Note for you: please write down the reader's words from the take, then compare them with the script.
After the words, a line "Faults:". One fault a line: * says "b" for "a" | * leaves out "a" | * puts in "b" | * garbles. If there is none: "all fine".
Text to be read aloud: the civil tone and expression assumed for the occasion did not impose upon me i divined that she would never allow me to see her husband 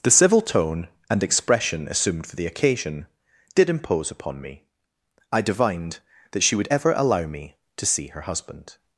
the civil tone and expression assumed for the occasion did impose upon me i divined that she would ever allow me to see her husband
Faults:
* leaves out "not"
* says "ever" for "never"